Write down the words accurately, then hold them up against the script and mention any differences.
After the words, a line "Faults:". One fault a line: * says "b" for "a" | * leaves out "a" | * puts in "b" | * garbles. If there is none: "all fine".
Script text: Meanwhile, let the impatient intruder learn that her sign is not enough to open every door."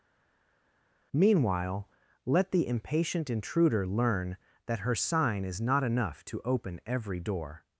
Meanwhile, let the impatient intruder learn that her sign is not enough to open every door."
Faults:
all fine